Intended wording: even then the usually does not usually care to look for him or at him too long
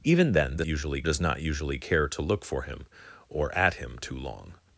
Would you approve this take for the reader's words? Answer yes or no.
yes